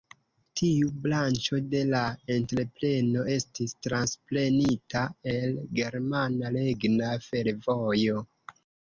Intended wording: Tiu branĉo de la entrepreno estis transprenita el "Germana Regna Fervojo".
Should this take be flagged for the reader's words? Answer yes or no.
no